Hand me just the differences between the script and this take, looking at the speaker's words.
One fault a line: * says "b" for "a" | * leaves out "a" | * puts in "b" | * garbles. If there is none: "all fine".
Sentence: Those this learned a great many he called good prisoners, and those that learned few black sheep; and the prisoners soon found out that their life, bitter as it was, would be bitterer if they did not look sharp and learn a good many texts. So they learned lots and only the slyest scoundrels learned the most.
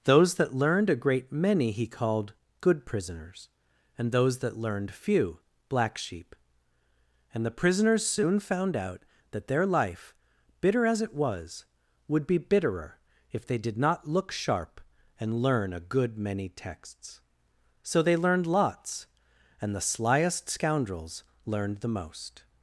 * says "that" for "this"
* leaves out "only"